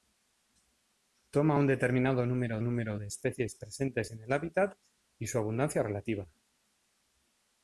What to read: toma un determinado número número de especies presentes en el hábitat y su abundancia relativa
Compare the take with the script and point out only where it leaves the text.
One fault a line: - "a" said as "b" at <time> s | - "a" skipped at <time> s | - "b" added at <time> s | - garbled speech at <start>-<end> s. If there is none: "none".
none